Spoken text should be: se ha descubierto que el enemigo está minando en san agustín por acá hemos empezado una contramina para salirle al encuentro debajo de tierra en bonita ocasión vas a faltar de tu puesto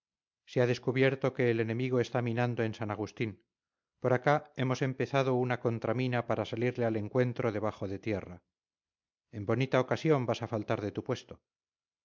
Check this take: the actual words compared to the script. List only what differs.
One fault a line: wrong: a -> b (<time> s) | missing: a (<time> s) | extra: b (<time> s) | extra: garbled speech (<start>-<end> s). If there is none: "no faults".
no faults